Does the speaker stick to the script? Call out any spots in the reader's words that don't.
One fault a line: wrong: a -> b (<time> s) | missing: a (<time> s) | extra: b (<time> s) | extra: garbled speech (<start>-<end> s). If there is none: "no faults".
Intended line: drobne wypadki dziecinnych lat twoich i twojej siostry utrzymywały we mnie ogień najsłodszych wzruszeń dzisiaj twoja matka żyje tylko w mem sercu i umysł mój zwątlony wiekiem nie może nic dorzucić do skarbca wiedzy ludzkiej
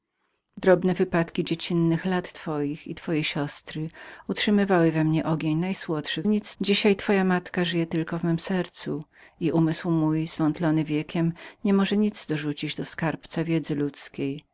wrong: wzruszeń -> nic (6.3 s)